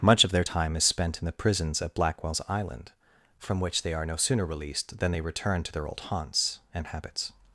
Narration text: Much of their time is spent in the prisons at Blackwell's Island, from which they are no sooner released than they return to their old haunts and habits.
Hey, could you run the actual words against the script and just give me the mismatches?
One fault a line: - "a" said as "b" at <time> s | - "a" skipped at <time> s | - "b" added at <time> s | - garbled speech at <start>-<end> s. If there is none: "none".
none